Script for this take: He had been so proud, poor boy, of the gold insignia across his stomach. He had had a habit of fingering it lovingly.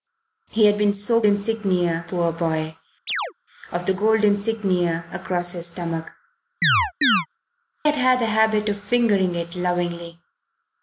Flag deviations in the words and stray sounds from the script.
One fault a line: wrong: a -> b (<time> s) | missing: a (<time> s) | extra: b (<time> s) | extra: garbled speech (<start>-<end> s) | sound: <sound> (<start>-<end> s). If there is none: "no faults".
wrong: proud -> insignia (1.3 s)
sound: chirp (3.1-3.3 s)
missing: He (6.1 s)
sound: chirp (6.6-7.3 s)